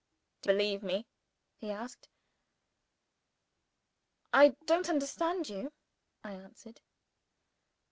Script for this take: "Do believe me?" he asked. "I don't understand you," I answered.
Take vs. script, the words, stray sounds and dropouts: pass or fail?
pass